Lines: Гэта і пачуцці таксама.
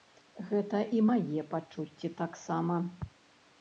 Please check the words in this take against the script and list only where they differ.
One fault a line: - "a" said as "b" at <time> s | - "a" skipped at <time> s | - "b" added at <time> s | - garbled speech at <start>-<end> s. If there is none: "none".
- "мае" added at 1.1 s